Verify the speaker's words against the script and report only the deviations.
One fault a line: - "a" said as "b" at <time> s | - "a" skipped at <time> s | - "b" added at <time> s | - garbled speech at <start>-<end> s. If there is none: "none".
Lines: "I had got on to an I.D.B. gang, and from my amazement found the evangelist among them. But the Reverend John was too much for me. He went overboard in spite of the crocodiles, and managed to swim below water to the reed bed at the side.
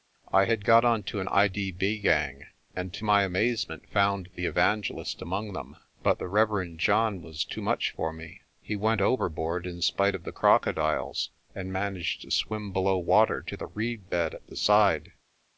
- "from" said as "to" at 2.9 s